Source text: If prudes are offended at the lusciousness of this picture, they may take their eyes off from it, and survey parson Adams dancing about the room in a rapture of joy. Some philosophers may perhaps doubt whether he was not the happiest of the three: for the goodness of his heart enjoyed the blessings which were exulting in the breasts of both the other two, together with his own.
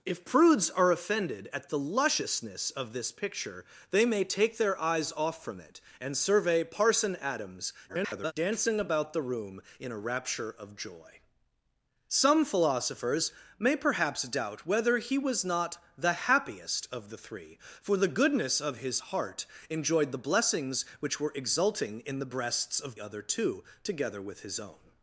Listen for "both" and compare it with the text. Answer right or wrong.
wrong